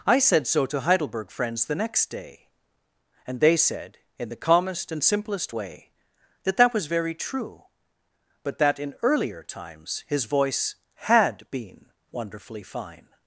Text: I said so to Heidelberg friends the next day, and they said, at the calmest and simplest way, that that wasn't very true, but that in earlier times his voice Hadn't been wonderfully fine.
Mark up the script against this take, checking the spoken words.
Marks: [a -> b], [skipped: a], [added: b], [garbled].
I said so to Heidelberg friends the next day, and they said, [at -> in] the calmest and simplest way, that that [wasn't -> was] very true, but that in earlier times his voice [Hadn't -> HAD] been wonderfully fine.